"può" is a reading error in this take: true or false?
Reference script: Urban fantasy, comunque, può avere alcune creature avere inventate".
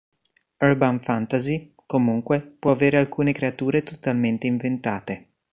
false